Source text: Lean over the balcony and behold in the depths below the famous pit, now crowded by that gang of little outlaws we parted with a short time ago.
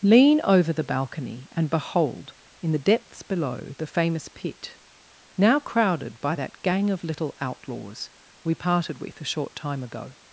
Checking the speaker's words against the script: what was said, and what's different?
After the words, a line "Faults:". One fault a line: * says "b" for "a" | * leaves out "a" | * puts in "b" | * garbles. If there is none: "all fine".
Lean over the balcony and behold in the depths below the famous pit, now crowded by that gang of little outlaws we parted with a short time ago.
Faults:
all fine